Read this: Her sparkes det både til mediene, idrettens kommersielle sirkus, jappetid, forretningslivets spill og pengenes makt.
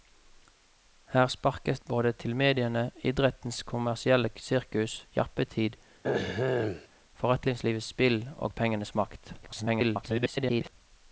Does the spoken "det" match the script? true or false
false